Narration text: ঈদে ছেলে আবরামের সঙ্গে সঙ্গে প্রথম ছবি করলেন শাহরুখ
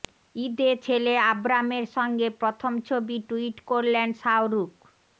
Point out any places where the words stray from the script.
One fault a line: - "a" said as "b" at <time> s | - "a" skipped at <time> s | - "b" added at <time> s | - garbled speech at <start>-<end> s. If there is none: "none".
- "সঙ্গে" skipped at 2.3 s
- "টুইট" added at 3.3 s